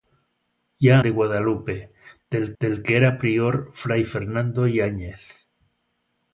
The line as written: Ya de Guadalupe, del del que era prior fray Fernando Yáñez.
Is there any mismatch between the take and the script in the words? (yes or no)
no